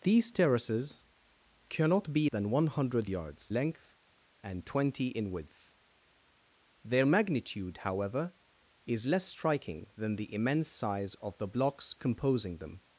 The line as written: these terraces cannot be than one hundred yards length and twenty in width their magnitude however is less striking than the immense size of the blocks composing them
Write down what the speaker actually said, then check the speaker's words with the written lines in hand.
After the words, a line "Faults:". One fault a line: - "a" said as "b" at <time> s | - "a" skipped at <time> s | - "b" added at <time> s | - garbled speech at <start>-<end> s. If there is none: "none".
these terraces cannot be than one hundred yards length and twenty in width their magnitude however is less striking than the immense size of the blocks composing them
Faults:
none